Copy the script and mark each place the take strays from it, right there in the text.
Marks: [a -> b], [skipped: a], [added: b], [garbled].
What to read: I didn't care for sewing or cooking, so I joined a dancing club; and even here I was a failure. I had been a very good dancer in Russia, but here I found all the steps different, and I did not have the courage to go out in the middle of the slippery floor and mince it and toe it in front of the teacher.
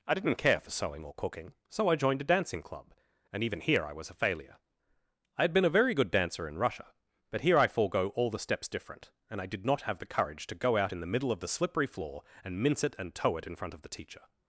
I didn't care for sewing or cooking, so I joined a dancing club; and even here I was a failure. I had been a very good dancer in Russia, but here I [found -> forego] all the steps different, and I did not have the courage to go out in the middle of the slippery floor and mince it and toe it in front of the teacher.